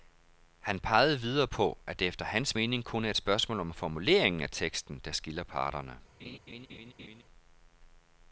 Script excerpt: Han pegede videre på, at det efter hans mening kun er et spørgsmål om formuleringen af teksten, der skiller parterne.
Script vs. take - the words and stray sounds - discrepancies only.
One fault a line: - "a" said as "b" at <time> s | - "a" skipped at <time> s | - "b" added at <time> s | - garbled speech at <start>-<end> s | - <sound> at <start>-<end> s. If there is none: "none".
- laugh at 6.2-7.2 s